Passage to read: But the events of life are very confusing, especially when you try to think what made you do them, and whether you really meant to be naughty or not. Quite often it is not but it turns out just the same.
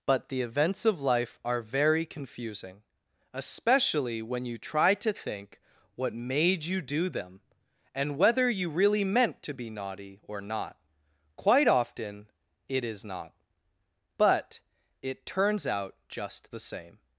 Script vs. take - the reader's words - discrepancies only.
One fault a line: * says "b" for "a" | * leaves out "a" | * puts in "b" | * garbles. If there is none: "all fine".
all fine